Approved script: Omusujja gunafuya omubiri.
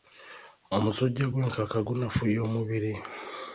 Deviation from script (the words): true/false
true